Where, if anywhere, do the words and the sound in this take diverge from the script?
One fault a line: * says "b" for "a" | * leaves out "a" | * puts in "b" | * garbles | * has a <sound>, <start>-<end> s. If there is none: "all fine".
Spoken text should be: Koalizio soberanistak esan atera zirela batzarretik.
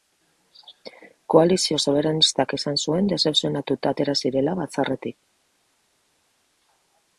* puts in "zuen dezepzionatuta"